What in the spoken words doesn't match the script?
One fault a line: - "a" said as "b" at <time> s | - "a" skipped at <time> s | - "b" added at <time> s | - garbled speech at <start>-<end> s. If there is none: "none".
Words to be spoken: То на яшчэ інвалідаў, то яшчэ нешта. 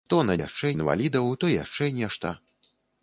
none